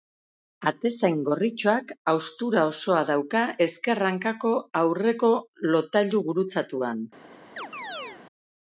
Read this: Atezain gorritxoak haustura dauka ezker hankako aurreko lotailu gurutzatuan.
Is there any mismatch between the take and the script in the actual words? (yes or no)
yes